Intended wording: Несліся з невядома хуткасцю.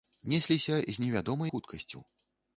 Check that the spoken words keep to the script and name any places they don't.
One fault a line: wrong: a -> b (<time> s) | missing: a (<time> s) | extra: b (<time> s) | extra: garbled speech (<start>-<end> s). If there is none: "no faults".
no faults